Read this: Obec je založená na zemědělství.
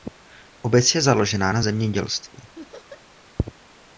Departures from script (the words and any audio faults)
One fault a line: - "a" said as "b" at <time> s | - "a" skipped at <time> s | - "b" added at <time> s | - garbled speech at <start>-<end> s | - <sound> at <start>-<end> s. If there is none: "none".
- laugh at 2.5-3.0 s